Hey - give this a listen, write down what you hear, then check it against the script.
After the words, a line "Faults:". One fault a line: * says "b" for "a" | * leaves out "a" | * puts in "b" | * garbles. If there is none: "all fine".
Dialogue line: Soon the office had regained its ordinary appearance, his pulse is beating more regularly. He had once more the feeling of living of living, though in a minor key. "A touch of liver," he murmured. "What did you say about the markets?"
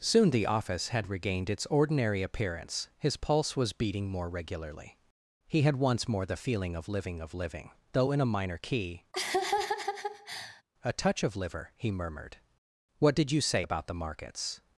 Soon the office had regained its ordinary appearance, his pulse was beating more regularly. He had once more the feeling of living of living, though in a minor key. "A touch of liver," he murmured. "What did you say about the markets?"
Faults:
* says "was" for "is"